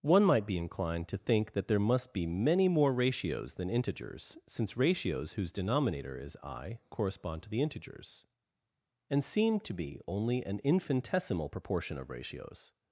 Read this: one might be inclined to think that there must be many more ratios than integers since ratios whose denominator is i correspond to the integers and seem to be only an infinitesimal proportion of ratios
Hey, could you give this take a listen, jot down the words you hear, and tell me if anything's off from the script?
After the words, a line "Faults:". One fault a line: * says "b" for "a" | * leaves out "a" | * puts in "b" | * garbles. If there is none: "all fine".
one might be inclined to think that there must be many more ratios than integers since ratios whose denominator is i correspond to the integers and seem to be only an infinitesimal proportion of ratios
Faults:
all fine